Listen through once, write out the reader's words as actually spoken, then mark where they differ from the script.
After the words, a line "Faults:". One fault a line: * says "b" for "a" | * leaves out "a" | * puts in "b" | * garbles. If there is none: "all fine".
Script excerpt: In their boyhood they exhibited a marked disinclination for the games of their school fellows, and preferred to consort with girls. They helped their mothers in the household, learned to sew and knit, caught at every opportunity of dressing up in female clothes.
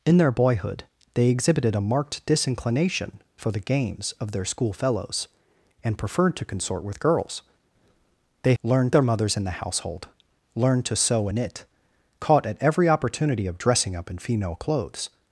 In their boyhood they exhibited a marked disinclination for the games of their school fellows, and preferred to consort with girls. They learned their mothers in the household, learned to sew knit, caught at every opportunity of dressing up in female clothes.
Faults:
* says "learned" for "helped"
* leaves out "and"